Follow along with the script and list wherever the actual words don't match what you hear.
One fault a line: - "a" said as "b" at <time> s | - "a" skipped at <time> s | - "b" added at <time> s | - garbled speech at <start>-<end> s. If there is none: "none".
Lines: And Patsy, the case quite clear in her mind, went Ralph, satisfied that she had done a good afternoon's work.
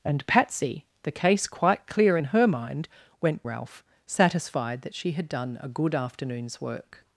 none